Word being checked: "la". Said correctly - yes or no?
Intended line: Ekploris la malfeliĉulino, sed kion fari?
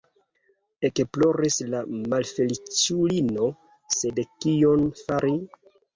yes